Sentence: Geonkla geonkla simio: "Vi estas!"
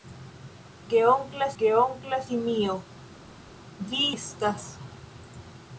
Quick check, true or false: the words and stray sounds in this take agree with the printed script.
true